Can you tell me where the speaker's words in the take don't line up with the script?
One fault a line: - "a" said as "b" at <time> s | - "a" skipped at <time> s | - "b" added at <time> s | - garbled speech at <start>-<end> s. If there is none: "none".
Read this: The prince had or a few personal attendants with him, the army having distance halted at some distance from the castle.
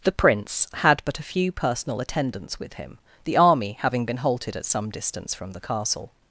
- "or" said as "but" at 1.1 s
- "distance" said as "been" at 4.0 s